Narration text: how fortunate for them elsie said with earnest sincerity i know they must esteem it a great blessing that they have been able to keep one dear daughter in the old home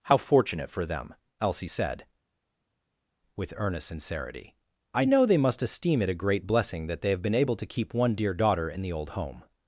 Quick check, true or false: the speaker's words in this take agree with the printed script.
true